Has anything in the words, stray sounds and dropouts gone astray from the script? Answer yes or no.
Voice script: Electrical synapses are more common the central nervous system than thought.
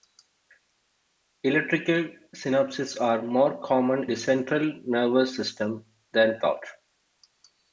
no